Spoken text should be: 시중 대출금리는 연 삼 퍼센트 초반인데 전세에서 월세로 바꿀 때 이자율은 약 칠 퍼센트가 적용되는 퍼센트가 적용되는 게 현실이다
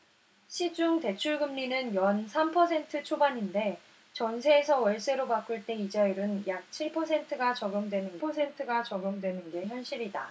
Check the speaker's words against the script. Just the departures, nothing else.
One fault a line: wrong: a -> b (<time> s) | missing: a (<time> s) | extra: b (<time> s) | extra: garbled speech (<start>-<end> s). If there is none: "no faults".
no faults